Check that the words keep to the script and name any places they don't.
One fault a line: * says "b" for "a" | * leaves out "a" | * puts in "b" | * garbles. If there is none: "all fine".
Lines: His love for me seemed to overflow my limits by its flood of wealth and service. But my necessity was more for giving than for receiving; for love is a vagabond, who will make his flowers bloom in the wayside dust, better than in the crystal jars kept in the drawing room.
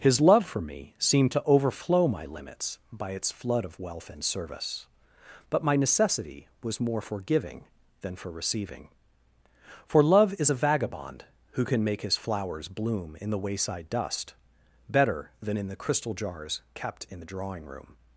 * says "can" for "will"